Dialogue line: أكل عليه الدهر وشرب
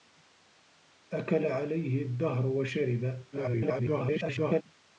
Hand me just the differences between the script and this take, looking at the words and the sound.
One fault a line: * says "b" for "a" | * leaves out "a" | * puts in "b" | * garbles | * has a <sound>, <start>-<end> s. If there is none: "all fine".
* garbles